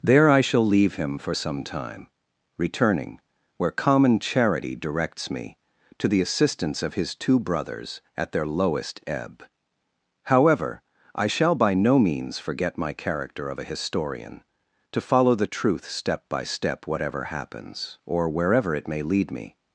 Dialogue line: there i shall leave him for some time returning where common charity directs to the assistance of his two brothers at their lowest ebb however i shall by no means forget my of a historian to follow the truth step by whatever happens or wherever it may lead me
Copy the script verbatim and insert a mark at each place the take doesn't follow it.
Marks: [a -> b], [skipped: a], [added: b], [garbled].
there i shall leave him for some time returning where common charity directs [added: me] to the assistance of his two brothers at their lowest ebb however i shall by no means forget my [added: character] of a historian to follow the truth step by [added: step] whatever happens or wherever it may lead me